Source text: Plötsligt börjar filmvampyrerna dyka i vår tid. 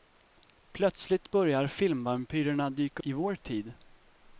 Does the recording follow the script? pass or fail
pass